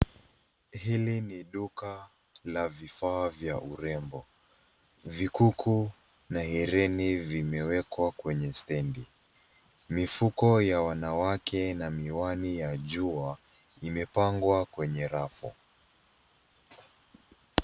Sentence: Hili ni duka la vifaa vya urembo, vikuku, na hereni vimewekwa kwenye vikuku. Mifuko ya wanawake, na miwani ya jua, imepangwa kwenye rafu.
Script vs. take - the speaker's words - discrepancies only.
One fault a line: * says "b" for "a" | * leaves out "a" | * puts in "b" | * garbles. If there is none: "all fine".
* says "stendi" for "vikuku"